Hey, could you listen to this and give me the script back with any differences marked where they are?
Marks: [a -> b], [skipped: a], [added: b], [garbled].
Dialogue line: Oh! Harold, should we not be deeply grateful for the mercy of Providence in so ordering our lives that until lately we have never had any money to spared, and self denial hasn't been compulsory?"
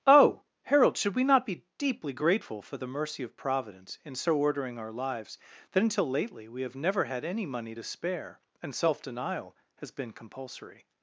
Oh! Harold, should we not be deeply grateful for the mercy of Providence in so ordering our lives that until lately we have never had any money to [spared, -> spare] and self denial [hasn't -> has] been compulsory?"